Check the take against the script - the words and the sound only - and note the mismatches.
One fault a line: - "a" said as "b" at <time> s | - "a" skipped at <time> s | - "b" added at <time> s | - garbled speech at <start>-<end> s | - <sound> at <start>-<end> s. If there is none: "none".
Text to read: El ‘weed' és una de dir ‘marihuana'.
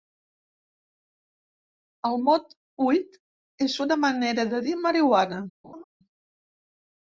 - "mot" added at 2.3 s
- "manera" added at 4.1 s
- laugh at 5.6-5.8 s